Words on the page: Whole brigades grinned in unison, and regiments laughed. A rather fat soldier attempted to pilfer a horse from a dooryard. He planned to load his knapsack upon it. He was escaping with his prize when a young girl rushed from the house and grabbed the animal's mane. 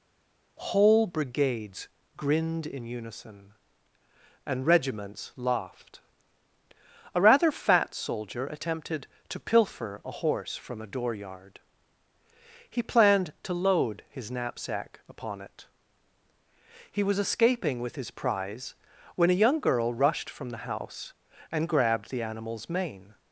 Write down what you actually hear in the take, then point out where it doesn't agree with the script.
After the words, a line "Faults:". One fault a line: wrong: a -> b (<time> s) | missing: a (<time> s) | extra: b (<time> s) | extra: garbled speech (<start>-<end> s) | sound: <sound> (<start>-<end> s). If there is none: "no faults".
Whole brigades grinned in unison, and regiments laughed. A rather fat soldier attempted to pilfer a horse from a dooryard. He planned to load his knapsack upon it. He was escaping with his prize when a young girl rushed from the house and grabbed the animal's mane.
Faults:
no faults